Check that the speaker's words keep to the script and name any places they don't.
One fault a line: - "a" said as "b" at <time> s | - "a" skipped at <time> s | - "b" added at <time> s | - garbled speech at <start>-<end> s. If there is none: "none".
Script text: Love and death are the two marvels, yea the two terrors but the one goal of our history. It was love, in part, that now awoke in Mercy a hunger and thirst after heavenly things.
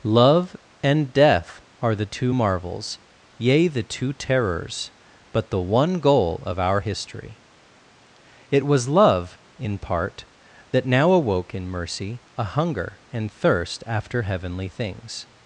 none